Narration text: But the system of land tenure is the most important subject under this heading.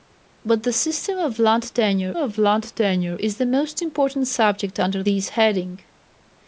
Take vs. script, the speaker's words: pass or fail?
fail